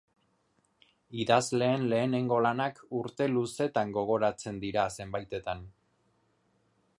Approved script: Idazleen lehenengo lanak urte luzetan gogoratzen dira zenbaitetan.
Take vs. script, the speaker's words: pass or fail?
pass